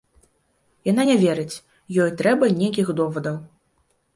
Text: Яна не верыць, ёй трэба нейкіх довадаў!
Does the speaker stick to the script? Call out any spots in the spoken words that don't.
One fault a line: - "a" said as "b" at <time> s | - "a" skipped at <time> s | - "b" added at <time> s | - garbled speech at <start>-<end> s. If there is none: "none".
none